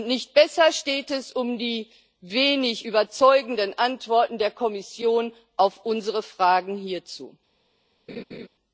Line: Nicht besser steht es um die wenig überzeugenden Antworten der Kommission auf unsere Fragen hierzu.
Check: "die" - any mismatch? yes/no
no